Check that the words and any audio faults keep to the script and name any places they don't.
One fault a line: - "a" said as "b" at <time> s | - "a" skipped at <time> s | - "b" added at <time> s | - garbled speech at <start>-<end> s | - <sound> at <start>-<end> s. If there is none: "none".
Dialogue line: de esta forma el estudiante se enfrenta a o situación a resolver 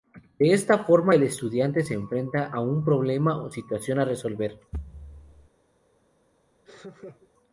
- "un problema" added at 2.6 s
- thud at 4.7-5.5 s
- laugh at 6.7-7.3 s